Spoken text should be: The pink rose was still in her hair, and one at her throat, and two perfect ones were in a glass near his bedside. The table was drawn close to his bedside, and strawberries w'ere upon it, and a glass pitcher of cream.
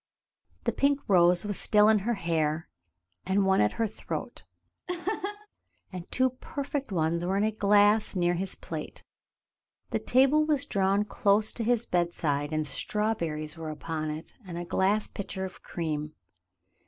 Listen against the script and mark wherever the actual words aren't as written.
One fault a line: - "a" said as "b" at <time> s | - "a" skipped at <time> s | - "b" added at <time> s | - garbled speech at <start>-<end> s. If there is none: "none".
- "bedside" said as "plate" at 8.6 s